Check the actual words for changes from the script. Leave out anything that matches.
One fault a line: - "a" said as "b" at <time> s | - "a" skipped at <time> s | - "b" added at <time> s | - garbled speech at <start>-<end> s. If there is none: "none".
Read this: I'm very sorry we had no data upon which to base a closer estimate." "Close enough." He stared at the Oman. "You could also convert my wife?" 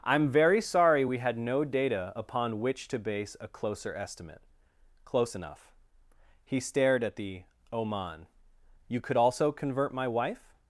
none